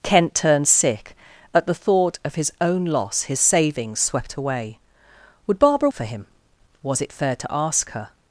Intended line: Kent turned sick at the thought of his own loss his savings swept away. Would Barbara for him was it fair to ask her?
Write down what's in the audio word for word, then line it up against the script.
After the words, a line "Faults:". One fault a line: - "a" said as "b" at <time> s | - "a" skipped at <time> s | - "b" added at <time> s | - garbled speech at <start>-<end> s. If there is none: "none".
Kent turned sick at the thought of his own loss his savings swept away. Would Barbara for him was it fair to ask her?
Faults:
none